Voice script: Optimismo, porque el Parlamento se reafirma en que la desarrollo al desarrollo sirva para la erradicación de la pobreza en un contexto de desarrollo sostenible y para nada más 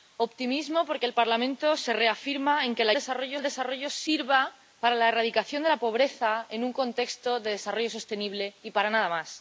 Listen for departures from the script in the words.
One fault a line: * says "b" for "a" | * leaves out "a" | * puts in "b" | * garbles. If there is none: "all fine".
all fine